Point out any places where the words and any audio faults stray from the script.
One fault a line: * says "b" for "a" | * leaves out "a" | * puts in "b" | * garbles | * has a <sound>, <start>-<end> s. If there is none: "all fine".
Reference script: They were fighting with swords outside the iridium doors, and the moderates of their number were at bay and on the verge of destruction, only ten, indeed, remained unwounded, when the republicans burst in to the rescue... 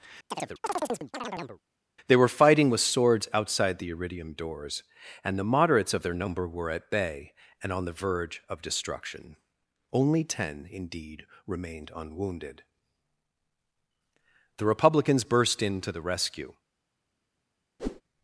* has a chirp, 0.3-1.6 s
* leaves out "when"
* has a whoosh, 17.8-18.0 s